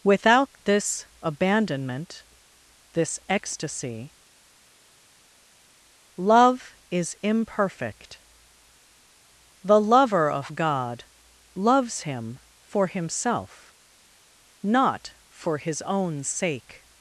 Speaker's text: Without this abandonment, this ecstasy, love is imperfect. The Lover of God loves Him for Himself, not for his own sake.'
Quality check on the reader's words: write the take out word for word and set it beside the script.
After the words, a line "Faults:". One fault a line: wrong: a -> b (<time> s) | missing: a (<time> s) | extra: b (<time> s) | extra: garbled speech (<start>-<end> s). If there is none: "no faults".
Without this abandonment, this ecstasy, love is imperfect. The Lover of God loves Him for Himself, not for his own sake.'
Faults:
no faults